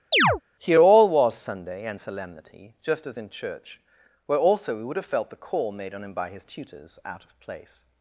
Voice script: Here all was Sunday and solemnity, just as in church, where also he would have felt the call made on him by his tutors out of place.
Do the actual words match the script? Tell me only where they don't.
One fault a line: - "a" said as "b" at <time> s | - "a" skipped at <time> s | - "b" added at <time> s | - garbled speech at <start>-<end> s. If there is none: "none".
none